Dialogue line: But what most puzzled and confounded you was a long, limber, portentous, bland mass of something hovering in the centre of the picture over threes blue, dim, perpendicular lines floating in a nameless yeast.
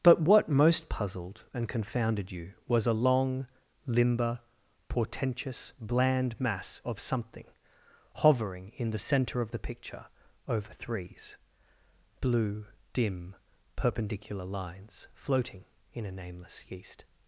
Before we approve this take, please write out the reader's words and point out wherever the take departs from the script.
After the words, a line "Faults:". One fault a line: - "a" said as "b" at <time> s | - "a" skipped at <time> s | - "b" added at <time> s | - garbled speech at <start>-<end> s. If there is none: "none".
But what most puzzled and confounded you was a long, limber, portentous, bland mass of something hovering in the centre of the picture over threes blue, dim, perpendicular lines floating in a nameless yeast.
Faults:
none